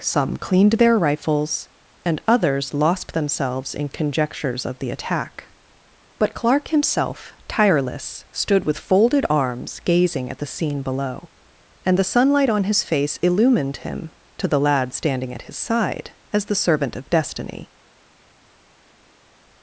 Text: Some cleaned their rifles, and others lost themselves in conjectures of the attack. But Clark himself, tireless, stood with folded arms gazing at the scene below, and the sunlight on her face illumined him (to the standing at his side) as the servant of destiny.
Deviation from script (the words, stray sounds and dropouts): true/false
true